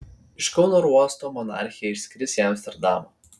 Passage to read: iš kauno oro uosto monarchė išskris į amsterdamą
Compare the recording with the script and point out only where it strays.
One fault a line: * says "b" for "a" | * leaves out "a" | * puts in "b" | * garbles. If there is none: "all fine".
all fine